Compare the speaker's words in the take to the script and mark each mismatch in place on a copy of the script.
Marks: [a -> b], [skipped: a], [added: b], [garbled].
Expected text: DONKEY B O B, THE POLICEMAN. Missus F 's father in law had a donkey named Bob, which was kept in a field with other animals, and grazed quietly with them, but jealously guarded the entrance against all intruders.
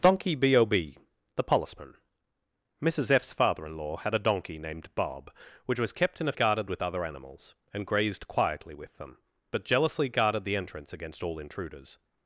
DONKEY B O B, THE POLICEMAN. Missus F 's father in law had a donkey named Bob, which was kept in a [field -> guarded] with other animals, and grazed quietly with them, but jealously guarded the entrance against all intruders.